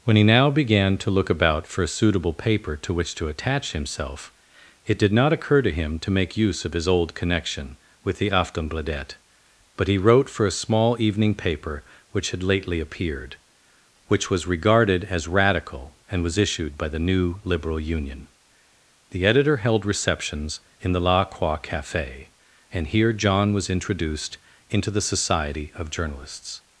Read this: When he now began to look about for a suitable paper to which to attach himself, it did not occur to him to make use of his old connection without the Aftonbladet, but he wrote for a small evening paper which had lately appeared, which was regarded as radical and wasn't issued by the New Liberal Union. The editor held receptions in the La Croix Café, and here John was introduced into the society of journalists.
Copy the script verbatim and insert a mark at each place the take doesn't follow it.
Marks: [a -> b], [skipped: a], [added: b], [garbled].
When he now began to look about for a suitable paper to which to attach himself, it did not occur to him to make use of his old connection [without -> with] the Aftonbladet, but he wrote for a small evening paper which had lately appeared, which was regarded as radical and [wasn't -> was] issued by the New Liberal Union. The editor held receptions in the La Croix Café, and here John was introduced into the society of journalists.